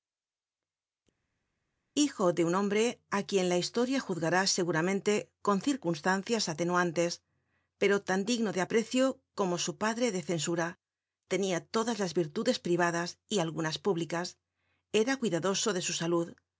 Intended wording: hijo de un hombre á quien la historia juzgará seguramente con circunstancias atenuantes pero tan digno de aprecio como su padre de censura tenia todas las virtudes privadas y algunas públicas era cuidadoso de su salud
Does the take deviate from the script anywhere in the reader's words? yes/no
no